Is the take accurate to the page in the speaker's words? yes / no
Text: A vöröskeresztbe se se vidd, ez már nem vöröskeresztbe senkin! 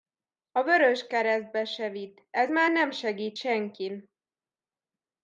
no